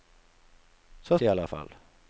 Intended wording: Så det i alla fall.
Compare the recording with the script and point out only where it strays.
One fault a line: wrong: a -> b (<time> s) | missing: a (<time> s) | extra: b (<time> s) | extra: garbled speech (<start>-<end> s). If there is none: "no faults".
no faults